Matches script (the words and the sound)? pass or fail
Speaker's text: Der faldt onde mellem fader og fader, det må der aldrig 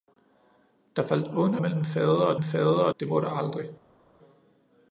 pass